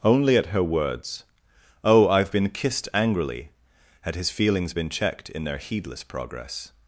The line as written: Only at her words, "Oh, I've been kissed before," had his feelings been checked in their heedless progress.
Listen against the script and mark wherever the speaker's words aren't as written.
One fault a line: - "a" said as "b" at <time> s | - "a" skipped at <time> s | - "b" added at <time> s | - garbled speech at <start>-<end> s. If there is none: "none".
- "before" said as "angrily" at 2.9 s